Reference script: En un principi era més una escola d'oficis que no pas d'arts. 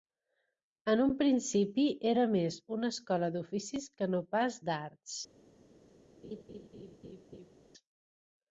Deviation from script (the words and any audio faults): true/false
true